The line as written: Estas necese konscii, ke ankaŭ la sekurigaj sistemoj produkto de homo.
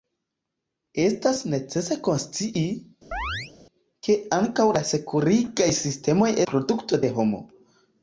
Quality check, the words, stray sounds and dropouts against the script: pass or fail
fail